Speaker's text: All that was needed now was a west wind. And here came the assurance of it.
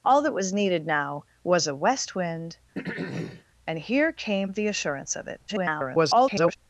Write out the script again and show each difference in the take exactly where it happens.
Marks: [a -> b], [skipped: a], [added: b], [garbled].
All that was needed now was a west wind. And here came the assurance of it. [garbled]